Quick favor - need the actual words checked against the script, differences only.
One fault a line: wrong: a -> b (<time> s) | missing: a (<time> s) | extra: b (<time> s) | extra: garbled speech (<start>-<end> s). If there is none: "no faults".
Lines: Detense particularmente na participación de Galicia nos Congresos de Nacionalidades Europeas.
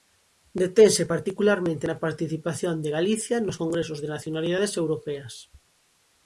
no faults